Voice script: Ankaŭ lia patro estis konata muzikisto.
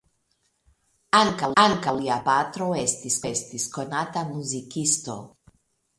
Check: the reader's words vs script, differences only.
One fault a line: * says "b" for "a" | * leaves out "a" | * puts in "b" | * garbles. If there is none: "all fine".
* puts in "ankaŭ"
* puts in "estis"